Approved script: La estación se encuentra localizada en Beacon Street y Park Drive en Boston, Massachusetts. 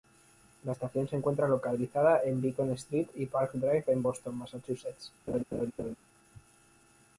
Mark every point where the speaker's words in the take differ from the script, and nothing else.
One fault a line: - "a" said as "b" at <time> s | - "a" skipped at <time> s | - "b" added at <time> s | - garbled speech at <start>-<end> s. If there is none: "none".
none